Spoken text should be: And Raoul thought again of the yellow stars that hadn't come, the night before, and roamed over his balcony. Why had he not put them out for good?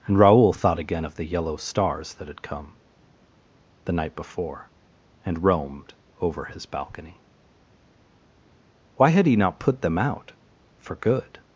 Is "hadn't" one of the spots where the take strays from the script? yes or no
yes